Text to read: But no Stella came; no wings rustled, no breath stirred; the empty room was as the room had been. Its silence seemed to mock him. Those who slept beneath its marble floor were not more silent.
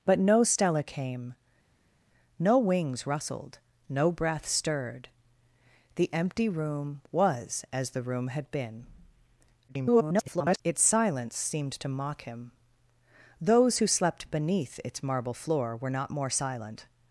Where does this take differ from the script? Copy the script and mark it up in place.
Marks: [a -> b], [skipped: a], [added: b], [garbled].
But no Stella came; no wings rustled, no breath stirred; the empty room was as the room had been. [garbled] Its silence seemed to mock him. Those who slept beneath its marble floor were not more silent.